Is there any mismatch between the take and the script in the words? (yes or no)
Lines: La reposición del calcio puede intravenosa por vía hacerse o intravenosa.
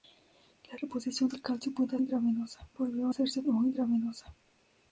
no